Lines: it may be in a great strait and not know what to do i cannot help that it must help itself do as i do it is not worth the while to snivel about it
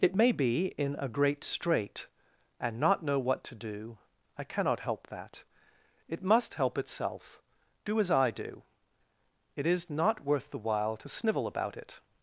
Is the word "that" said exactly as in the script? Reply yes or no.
yes